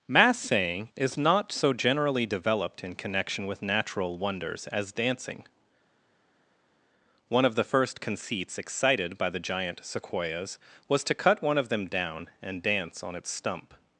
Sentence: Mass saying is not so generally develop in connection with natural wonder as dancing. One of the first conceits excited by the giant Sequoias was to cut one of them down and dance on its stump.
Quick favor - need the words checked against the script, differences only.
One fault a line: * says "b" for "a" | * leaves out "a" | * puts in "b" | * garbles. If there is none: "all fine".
* says "developed" for "develop"
* says "wonders" for "wonder"